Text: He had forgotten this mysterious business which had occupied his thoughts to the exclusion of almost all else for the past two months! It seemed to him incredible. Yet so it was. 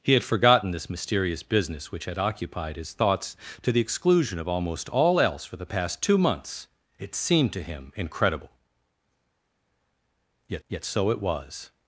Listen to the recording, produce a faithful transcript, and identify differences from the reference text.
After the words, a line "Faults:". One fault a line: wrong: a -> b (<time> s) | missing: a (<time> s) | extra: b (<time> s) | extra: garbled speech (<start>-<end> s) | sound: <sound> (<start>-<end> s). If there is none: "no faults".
He had forgotten this mysterious business which had occupied his thoughts to the exclusion of almost all else for the past two months! It seemed to him incredible. Yet yet so it was.
Faults:
extra: yet (10.7 s)